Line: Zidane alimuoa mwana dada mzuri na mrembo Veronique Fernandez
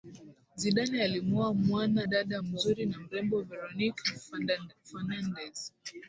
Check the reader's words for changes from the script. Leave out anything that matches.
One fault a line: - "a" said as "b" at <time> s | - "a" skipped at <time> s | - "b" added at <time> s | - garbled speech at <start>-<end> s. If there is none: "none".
none